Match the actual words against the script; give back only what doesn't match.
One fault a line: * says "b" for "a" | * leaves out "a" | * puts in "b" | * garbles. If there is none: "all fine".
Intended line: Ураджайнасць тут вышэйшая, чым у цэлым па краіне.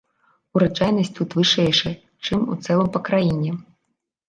all fine